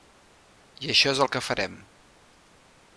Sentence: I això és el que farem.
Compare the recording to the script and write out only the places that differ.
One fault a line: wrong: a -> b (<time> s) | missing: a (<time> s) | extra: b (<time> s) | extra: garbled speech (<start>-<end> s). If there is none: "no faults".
no faults